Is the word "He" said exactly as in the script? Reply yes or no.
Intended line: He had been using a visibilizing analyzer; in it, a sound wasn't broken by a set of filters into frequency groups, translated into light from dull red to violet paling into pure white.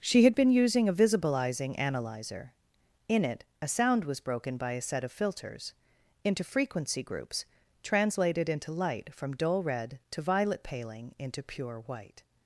no